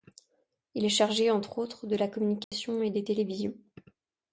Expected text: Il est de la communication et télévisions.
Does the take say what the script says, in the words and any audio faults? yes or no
no